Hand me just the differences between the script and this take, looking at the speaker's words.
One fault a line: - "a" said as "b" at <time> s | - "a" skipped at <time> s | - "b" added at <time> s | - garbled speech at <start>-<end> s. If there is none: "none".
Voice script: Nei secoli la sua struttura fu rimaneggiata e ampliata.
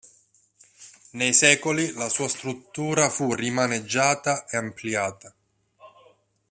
none